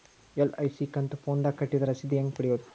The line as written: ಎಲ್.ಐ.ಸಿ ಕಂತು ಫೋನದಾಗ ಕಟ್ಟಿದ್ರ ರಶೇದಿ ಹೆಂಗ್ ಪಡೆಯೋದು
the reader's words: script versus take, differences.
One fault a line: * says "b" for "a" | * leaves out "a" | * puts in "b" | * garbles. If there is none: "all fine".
all fine